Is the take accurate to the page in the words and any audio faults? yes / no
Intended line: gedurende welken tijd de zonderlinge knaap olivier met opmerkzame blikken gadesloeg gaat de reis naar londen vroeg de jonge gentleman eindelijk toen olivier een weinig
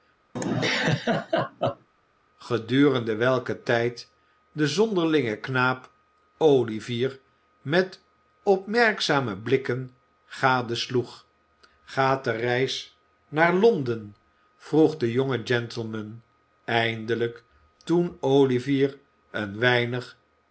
no